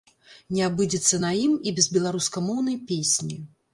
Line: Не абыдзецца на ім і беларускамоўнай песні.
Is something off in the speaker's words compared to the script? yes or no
yes